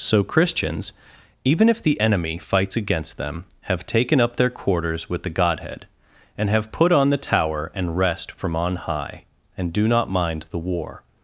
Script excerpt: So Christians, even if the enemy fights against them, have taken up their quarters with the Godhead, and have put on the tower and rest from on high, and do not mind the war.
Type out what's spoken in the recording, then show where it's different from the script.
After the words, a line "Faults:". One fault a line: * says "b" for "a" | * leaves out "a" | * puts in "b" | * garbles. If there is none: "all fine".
So Christians, even if the enemy fights against them, have taken up their quarters with the Godhead, and have put on the tower and rest from on high, and do not mind the war.
Faults:
all fine